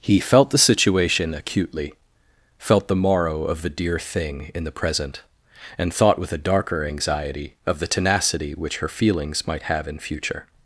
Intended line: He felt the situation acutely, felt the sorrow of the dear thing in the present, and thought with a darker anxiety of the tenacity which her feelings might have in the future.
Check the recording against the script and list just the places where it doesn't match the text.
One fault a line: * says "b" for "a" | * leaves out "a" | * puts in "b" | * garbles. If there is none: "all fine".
* says "morrow" for "sorrow"
* leaves out "the"